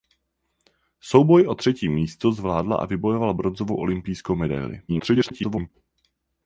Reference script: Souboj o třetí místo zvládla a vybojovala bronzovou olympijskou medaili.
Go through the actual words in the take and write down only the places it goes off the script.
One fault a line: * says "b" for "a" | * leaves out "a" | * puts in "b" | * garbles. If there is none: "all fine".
* garbles